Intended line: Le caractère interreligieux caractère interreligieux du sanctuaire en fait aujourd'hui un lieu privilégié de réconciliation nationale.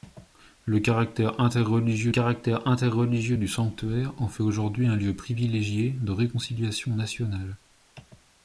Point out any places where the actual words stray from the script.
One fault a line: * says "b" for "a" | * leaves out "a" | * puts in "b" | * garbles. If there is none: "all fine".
all fine